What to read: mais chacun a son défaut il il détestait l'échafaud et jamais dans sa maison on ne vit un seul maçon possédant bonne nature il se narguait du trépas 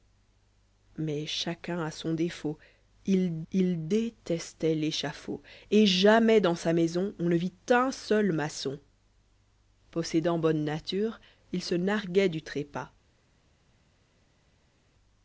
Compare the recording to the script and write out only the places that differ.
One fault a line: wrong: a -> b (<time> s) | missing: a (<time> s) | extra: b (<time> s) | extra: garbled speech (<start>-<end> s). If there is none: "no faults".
no faults